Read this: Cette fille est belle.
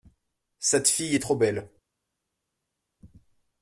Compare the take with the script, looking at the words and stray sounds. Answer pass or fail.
fail